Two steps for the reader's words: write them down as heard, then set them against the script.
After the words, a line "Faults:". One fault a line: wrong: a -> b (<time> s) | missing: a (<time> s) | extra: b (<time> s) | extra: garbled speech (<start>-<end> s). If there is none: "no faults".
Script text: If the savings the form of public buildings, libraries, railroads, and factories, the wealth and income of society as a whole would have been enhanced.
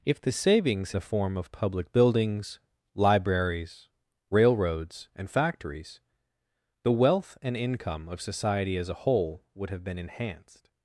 If the savings the form of public buildings, libraries, railroads, and factories, the wealth and income of society as a whole would have been enhanced.
Faults:
no faults